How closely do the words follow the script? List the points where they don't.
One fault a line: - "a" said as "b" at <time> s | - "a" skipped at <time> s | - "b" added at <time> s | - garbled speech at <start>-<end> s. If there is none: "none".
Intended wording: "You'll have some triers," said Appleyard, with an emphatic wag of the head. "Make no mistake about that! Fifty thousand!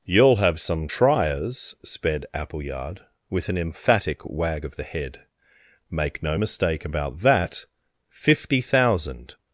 - "said" said as "sped" at 1.8 s